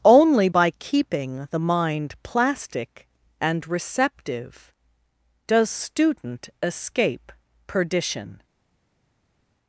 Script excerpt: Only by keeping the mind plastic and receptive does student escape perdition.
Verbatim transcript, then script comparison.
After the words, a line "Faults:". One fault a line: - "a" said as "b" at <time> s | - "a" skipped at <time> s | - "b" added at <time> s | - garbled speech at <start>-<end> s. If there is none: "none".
Only by keeping the mind plastic and receptive does student escape perdition.
Faults:
none